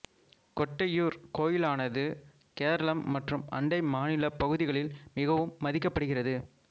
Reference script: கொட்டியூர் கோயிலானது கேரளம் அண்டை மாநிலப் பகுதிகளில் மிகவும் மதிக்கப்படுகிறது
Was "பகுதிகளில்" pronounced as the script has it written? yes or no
yes